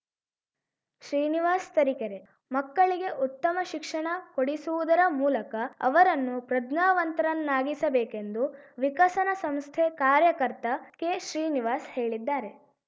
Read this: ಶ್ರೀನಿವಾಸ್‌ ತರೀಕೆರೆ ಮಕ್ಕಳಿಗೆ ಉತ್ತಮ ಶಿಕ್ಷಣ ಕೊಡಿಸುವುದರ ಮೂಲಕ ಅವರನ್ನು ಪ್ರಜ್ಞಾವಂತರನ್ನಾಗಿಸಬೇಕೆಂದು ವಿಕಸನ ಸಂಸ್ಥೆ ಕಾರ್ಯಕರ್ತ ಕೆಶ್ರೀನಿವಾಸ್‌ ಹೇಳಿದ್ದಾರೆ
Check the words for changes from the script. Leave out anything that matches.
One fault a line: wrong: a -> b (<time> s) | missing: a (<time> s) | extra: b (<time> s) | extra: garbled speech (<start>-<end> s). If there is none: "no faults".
no faults